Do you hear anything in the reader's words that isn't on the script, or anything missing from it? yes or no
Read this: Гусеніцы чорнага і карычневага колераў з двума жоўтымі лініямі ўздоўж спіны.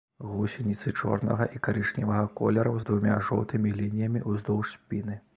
no